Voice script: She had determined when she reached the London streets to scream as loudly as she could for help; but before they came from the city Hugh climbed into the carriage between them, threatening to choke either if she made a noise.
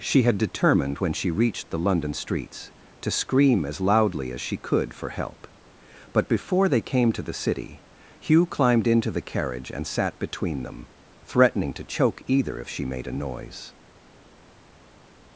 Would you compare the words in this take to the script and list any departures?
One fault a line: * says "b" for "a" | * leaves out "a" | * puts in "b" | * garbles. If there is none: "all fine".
* says "to" for "from"
* puts in "and sat"